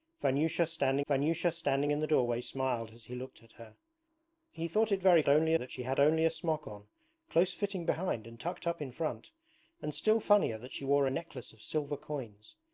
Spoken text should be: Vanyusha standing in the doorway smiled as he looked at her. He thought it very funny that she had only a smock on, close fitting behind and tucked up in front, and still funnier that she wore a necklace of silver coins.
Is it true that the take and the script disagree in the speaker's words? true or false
true